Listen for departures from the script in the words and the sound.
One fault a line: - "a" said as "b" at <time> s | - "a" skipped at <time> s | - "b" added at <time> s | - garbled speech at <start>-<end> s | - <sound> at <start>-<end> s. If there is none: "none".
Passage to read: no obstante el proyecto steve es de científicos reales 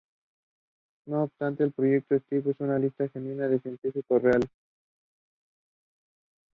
- "una lista genuina" added at 2.6 s